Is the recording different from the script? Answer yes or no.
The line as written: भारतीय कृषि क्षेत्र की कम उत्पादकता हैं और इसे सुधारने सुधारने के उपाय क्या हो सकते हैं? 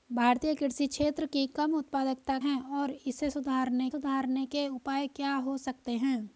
no